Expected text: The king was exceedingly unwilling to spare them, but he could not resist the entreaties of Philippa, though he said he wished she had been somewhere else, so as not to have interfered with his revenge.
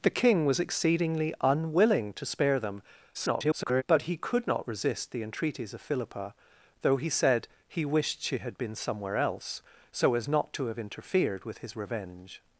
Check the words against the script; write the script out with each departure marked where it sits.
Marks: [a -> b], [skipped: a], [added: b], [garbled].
The king was exceedingly unwilling to spare them, [garbled] but he could not resist the entreaties of Philippa, though he said he wished she had been somewhere else, so as not to have interfered with his revenge.